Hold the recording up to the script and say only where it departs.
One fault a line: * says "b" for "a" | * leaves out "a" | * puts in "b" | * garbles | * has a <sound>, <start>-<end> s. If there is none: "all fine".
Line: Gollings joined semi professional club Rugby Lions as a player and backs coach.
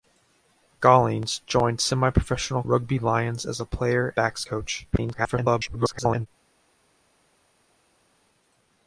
* leaves out "club"
* leaves out "and"
* garbles